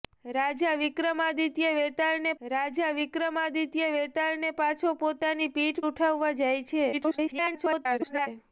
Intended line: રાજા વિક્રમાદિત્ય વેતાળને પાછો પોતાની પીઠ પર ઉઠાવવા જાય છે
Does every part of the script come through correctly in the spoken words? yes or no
no